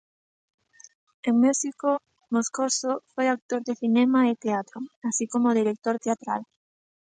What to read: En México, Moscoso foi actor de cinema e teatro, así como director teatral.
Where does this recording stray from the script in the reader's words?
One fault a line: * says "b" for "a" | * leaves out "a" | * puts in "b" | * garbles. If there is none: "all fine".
all fine